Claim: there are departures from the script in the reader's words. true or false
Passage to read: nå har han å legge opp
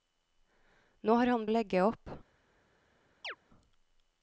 false